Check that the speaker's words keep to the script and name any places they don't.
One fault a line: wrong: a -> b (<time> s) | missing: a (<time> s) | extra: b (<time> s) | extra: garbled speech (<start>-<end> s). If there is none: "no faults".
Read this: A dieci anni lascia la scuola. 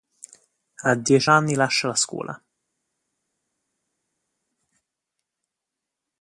no faults